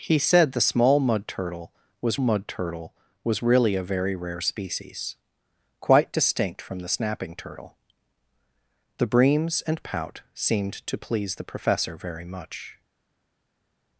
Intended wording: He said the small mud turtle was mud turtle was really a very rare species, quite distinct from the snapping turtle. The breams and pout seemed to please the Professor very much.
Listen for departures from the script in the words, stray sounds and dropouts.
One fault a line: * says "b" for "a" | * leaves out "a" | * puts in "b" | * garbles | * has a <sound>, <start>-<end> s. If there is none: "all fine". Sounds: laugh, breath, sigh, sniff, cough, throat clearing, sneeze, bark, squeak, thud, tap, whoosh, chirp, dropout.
all fine